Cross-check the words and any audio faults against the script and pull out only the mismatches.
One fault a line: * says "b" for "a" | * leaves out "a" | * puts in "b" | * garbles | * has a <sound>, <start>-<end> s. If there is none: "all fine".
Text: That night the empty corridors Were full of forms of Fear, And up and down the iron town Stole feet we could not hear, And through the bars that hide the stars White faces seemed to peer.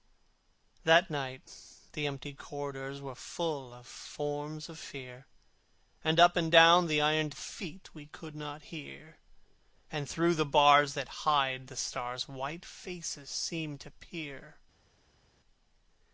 * leaves out "town Stole"